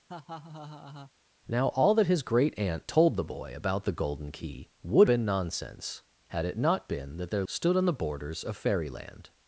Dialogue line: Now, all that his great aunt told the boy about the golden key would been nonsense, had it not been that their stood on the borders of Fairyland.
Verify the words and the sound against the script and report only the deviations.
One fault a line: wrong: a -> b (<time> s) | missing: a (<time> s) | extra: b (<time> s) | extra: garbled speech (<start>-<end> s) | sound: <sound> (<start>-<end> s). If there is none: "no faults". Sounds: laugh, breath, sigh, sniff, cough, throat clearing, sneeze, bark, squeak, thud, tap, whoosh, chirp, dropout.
sound: laugh (0.1-1.1 s)